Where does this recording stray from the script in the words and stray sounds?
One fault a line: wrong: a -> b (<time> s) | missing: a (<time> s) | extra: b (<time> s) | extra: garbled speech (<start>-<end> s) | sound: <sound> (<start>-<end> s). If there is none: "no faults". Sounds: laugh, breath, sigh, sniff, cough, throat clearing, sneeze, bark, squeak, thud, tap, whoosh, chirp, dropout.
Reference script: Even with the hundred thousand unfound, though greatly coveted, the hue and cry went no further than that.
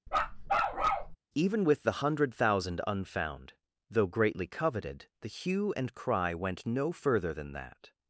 sound: bark (0.1-1.2 s)